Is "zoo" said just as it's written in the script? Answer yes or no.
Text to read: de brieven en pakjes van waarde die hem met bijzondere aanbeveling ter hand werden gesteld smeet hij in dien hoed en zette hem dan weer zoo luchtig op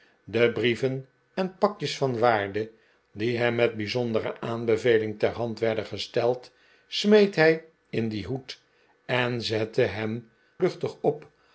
no